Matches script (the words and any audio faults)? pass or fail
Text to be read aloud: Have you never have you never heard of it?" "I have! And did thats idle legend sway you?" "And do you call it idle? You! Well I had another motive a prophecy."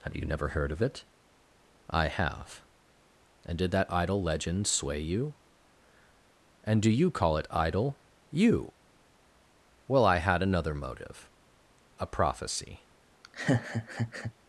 fail